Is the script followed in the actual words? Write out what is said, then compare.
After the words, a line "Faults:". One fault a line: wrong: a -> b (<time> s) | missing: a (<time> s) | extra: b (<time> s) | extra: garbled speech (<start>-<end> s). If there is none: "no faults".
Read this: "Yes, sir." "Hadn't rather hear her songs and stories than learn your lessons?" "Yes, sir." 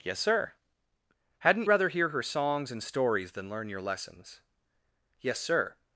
"Yes, sir." "Hadn't rather hear her songs and stories than learn your lessons?" "Yes, sir."
Faults:
no faults